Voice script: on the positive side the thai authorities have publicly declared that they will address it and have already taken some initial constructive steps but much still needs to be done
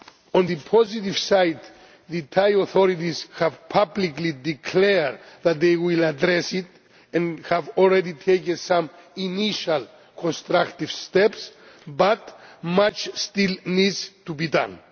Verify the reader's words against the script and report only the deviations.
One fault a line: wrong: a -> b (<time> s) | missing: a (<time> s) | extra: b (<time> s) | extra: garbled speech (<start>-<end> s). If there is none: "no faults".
no faults